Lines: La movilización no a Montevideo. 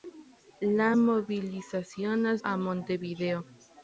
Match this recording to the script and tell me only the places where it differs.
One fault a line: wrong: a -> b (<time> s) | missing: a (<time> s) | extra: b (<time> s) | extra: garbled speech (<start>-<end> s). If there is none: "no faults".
no faults